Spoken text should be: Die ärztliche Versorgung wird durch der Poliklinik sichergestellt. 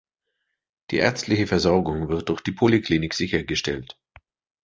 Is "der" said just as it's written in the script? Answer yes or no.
no